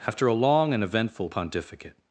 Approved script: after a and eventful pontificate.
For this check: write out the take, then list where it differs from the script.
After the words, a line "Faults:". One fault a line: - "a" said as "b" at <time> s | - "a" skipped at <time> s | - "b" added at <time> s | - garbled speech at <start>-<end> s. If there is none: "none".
after a long and eventful pontificate.
Faults:
- "long" added at 0.3 s